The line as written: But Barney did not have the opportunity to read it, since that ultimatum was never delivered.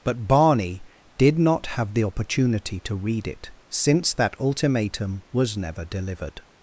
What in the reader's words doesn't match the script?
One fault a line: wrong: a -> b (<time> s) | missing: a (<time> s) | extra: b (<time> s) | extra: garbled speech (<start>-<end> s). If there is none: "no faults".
no faults